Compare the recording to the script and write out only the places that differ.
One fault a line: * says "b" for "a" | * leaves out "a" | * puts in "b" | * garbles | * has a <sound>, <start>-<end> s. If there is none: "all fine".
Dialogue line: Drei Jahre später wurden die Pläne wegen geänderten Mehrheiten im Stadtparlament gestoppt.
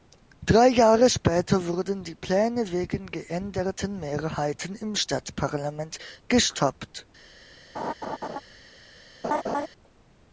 * has a laugh, 7.7-8.4 s
* has a laugh, 9.2-9.7 s